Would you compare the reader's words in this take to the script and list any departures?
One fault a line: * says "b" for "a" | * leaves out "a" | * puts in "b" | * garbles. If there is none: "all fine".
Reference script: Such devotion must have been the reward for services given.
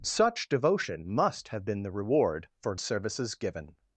all fine